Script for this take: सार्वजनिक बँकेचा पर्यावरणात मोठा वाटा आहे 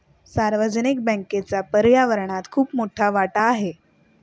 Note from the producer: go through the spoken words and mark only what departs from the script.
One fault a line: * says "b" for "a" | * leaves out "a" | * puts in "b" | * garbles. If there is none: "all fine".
* puts in "खूप"